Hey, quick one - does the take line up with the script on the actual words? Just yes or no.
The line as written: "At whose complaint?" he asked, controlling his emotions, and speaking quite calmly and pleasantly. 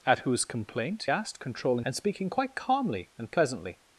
no